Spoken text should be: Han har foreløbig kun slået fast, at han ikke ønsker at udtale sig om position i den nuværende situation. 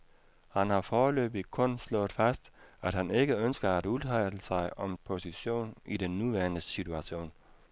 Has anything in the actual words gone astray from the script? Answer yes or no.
no